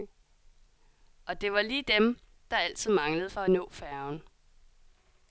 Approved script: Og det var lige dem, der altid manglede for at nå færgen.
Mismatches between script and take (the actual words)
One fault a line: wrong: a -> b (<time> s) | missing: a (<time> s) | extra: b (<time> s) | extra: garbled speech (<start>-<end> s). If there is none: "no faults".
no faults